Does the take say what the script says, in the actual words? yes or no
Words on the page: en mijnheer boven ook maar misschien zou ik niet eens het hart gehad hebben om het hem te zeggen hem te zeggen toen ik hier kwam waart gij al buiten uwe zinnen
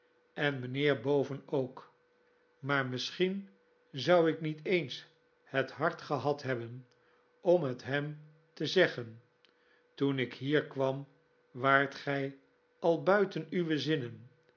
no